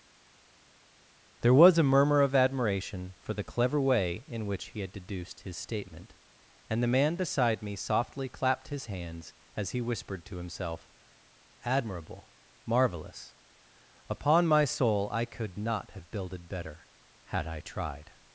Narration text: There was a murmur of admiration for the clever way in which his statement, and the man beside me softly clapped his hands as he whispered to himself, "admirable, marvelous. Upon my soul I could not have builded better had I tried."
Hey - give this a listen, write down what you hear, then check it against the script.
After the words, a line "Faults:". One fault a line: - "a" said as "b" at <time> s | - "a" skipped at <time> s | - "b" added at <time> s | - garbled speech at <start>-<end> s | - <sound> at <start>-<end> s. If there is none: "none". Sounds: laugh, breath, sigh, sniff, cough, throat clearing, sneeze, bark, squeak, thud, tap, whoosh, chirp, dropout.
There was a murmur of admiration for the clever way in which he had deduced his statement, and the man beside me softly clapped his hands as he whispered to himself, "admirable, marvelous. Upon my soul I could not have builded better had I tried."
Faults:
- "he had deduced" added at 4.7 s